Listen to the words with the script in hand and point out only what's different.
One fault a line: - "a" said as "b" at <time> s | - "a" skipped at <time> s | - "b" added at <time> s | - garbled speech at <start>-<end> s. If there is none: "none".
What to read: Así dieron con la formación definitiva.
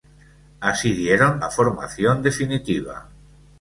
- "con" skipped at 1.4 s